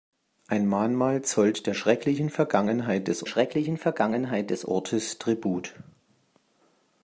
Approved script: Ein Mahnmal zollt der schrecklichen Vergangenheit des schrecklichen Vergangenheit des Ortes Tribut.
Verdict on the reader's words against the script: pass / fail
pass